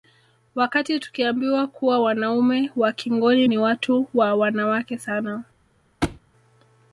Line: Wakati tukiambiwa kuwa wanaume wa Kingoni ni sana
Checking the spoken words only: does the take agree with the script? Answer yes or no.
no